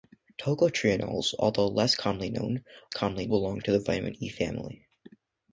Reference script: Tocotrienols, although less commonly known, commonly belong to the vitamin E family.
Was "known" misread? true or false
false